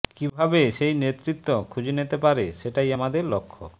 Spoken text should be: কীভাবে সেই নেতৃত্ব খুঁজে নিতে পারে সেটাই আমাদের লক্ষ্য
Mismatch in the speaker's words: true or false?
false